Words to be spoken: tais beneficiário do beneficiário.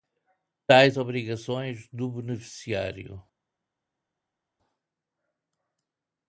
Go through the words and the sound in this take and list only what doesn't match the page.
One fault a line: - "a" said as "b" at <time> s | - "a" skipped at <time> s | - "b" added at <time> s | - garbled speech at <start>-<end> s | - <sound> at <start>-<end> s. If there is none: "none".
- "beneficiário" said as "obrigações" at 1.0 s